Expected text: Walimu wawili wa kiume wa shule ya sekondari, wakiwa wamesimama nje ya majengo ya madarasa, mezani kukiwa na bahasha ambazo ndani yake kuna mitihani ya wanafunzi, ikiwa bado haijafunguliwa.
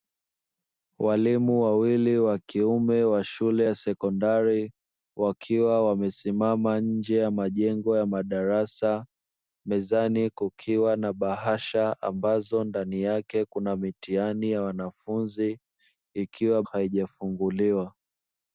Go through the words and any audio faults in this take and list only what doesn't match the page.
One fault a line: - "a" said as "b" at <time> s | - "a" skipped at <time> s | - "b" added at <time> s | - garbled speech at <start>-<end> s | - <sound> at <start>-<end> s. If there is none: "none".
- "bado" skipped at 16.6 s